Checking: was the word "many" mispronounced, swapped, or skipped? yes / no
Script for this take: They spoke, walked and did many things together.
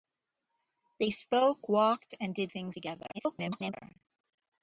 yes